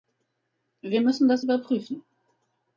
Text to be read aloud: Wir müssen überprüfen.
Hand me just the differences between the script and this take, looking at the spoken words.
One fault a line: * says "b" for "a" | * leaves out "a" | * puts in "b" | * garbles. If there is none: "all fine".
* puts in "das"